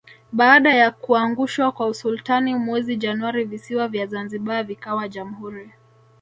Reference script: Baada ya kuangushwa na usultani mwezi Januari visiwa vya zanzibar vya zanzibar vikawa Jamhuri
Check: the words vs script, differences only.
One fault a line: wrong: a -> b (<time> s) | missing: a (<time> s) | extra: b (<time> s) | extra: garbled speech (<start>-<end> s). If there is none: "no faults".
wrong: na -> kwa (1.7 s)
missing: vya zanzibar (4.6 s)